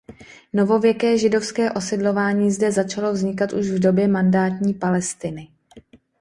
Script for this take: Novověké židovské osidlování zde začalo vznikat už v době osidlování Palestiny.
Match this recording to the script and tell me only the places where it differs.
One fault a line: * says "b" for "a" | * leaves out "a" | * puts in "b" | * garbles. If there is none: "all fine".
* says "mandátní" for "osidlování"